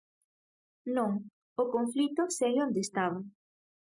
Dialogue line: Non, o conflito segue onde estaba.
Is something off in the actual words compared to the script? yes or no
no